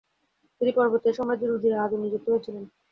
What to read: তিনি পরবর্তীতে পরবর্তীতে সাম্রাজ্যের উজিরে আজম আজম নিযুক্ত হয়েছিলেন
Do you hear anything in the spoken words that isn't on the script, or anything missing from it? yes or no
yes